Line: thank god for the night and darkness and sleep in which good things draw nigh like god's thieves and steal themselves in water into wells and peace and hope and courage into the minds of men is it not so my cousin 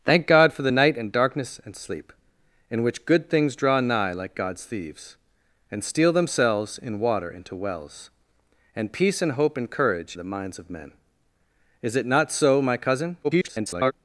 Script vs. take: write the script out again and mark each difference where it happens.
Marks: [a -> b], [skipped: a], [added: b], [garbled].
thank god for the night and darkness and sleep in which good things draw nigh like god's thieves and steal themselves in water into wells and peace and hope and courage [skipped: into] the minds of men is it not so my cousin [garbled]